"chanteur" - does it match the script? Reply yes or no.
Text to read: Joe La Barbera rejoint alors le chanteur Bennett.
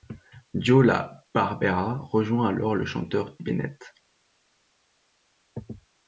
yes